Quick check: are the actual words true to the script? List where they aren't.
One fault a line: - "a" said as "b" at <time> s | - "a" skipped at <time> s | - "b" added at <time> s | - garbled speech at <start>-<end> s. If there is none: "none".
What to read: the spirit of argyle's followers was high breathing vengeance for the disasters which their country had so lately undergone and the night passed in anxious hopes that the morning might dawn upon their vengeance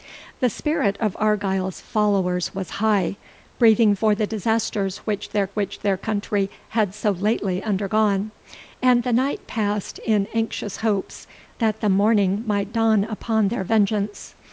- "vengeance" skipped at 3.9 s
- "which their" added at 5.5 s